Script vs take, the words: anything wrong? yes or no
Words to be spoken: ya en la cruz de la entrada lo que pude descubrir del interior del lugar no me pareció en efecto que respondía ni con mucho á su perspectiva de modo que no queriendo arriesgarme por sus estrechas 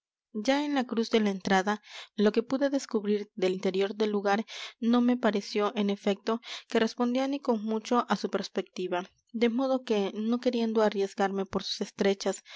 no